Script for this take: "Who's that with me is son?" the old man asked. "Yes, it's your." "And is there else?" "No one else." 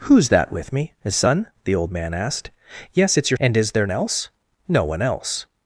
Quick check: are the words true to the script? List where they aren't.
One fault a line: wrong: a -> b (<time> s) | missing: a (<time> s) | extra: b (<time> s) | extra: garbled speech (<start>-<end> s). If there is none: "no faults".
no faults